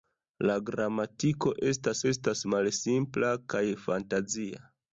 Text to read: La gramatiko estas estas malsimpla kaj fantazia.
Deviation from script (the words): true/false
false